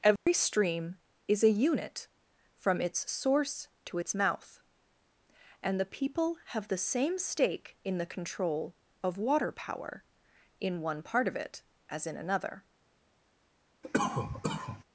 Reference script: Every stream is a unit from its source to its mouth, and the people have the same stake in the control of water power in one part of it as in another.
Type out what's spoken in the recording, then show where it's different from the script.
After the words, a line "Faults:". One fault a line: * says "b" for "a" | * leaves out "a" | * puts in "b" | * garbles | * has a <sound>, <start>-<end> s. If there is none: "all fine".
Every stream is a unit from its source to its mouth, and the people have the same stake in the control of water power in one part of it as in another.
Faults:
* has a dropout, 0.2-0.3 s
* has a cough, 13.8-14.8 s